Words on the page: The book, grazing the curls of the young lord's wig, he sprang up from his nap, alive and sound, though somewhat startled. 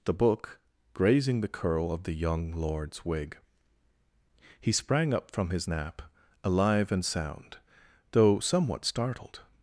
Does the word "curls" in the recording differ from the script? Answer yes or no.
yes